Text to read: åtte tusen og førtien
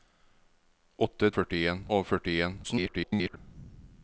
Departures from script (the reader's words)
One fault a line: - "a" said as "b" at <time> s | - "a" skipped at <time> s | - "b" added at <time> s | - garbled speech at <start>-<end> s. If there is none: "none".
- "tusen" said as "førtien" at 1.4 s
- garbled speech at 2.6-3.4 s